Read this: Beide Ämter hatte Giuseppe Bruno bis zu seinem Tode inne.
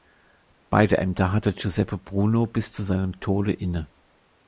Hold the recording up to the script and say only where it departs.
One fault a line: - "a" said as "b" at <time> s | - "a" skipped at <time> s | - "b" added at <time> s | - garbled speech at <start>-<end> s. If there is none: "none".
none